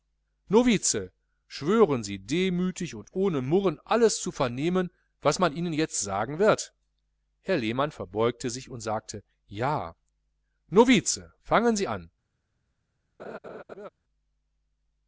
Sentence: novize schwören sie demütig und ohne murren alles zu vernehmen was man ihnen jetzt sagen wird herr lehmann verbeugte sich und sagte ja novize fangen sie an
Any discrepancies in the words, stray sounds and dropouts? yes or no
yes